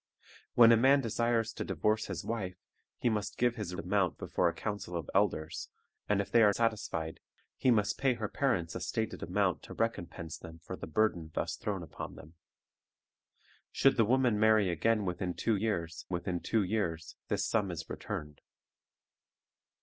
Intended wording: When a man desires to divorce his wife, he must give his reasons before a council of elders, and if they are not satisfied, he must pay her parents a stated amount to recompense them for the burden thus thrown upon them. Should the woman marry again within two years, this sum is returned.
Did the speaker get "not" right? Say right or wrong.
wrong